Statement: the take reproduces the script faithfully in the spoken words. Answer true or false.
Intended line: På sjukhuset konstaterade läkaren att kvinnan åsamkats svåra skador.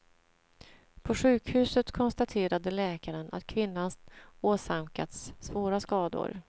true